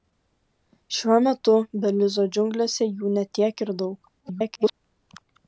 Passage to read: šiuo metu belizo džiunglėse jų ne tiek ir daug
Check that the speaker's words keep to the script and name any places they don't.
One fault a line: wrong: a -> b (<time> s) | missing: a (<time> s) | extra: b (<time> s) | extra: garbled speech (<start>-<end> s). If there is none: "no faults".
extra: garbled speech (4.2-4.7 s)